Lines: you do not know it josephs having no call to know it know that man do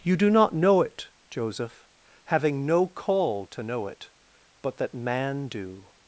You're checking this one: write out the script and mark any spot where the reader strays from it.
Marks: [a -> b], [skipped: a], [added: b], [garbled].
you do not know it [josephs -> joseph] having no call to know it [know -> but] that man do